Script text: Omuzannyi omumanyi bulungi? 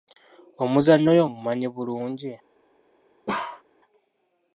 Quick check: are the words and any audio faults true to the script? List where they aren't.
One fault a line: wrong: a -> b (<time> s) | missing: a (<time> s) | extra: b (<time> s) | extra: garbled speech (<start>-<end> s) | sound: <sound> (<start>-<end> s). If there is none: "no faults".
extra: oyo (1.1 s)
sound: bark (3.3-3.6 s)